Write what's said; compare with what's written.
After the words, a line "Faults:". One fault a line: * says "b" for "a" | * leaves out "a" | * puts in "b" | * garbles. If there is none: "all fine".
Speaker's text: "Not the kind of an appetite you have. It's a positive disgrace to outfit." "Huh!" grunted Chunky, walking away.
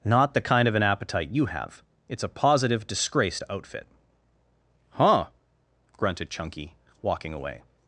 "Not the kind of an appetite you have. It's a positive disgrace to outfit." "Huh!" grunted Chunky, walking away.
Faults:
all fine